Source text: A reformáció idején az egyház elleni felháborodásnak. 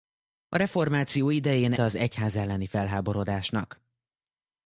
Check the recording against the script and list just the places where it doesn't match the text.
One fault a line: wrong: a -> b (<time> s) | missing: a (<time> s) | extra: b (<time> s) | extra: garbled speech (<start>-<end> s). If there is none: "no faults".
no faults